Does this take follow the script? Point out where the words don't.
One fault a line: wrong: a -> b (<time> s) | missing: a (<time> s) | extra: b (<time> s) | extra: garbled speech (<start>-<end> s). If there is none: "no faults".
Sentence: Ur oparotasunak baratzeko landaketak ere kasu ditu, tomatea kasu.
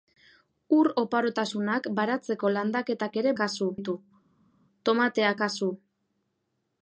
no faults